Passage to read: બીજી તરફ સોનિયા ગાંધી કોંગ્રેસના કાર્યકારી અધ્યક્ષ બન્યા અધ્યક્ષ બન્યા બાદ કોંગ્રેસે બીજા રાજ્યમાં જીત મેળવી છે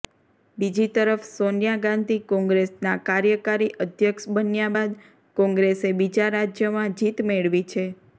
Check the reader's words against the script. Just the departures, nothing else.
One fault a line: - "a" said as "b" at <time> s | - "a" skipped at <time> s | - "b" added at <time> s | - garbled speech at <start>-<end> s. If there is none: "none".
- "અધ્યક્ષ બન્યા" skipped at 4.7 s